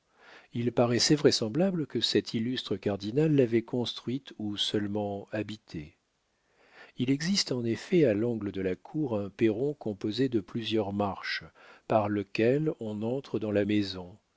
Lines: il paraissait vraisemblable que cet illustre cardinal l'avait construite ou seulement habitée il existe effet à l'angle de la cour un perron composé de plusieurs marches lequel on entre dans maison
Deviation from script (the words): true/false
true